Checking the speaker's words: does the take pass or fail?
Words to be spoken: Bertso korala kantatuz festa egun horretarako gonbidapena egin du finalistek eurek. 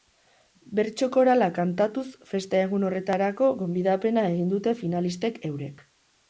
fail